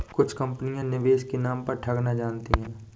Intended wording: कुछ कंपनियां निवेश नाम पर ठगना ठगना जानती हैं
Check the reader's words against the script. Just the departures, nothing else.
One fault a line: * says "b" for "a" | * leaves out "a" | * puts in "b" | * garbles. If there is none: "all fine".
* puts in "के"
* leaves out "ठगना"